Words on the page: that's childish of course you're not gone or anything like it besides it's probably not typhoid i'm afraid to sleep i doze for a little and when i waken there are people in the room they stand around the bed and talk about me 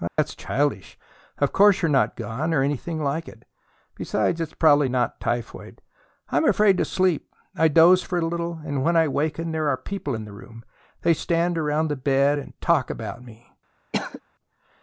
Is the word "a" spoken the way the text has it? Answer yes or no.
yes